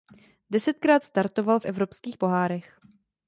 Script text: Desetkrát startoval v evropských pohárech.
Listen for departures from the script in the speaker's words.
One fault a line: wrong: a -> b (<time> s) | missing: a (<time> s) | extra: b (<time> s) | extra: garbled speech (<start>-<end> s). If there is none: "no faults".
no faults